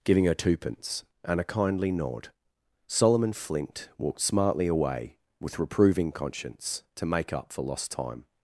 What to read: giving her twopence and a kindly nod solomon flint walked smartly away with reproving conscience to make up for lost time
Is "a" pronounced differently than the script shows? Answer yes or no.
no